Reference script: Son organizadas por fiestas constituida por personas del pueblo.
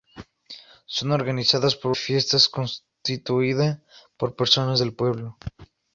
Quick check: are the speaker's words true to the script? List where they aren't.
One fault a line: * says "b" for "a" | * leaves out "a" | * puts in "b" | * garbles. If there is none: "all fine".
all fine